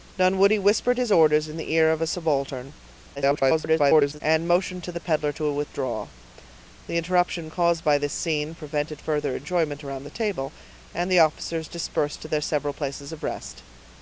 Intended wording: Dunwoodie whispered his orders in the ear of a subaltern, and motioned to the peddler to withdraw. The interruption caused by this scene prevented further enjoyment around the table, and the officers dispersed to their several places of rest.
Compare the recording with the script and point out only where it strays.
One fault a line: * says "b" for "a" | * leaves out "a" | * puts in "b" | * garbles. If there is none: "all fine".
* garbles